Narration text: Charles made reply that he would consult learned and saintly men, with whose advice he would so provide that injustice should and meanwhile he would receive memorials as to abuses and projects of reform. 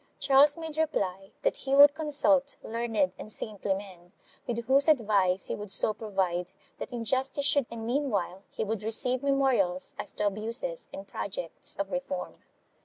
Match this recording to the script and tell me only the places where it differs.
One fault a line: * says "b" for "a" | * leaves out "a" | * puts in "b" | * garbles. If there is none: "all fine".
all fine